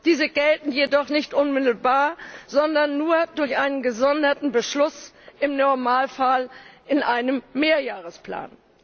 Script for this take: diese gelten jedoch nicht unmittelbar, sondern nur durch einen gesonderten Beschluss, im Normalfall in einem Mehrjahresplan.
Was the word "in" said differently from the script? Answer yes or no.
no